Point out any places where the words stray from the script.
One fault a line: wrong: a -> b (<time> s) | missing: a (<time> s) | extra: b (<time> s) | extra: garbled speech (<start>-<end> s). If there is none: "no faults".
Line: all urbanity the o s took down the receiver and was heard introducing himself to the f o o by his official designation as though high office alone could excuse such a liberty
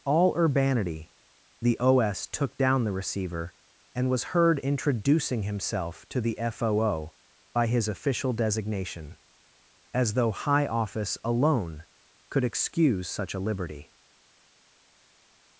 no faults